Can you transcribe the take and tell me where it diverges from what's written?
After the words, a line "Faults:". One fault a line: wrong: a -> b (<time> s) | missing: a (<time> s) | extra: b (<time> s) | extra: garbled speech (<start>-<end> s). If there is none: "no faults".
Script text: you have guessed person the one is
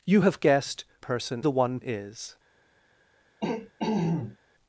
you have guessed person the one is
Faults:
no faults